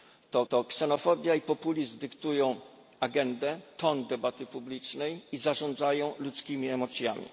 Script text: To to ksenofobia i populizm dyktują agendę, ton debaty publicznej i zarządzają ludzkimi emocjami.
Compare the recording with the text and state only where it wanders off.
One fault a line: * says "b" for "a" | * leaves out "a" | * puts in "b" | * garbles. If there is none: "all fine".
all fine